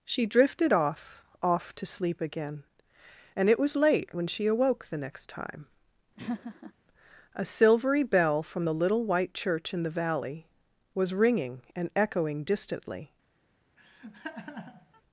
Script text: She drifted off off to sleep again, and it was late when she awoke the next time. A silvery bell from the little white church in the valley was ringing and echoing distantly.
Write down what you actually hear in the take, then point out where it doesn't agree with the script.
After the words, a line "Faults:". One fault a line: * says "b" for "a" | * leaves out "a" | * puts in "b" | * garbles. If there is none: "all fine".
She drifted off off to sleep again, and it was late when she awoke the next time. A silvery bell from the little white church in the valley was ringing and echoing distantly.
Faults:
all fine